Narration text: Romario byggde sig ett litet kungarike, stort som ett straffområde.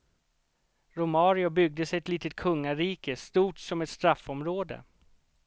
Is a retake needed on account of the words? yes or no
no